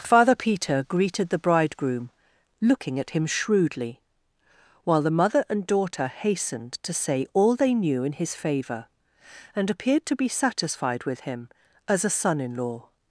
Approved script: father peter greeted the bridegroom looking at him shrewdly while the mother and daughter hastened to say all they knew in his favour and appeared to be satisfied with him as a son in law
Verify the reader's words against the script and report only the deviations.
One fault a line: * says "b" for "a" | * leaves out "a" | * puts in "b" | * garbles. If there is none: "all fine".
all fine